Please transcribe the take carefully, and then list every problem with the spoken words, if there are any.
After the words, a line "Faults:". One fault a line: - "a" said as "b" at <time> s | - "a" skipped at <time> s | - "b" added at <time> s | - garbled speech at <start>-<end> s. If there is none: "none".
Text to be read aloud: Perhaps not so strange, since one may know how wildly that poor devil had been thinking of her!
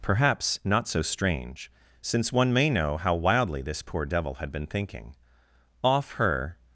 Perhaps not so strange, since one may know how wildly this poor devil had been thinking off her!
Faults:
- "that" said as "this" at 3.6 s
- "of" said as "off" at 5.8 s